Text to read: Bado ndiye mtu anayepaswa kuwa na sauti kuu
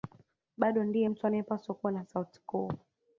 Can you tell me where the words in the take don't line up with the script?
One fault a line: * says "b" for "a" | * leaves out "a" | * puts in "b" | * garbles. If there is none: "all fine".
all fine